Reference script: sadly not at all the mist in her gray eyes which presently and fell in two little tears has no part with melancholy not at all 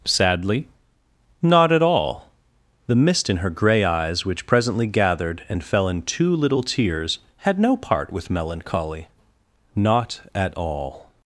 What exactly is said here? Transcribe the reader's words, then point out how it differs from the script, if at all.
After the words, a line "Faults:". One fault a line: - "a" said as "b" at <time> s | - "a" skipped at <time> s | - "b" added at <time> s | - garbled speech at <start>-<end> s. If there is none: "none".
sadly not at all the mist in her gray eyes which presently gathered and fell in two little tears had no part with melancholy not at all
Faults:
- "gathered" added at 4.9 s
- "has" said as "had" at 7.4 s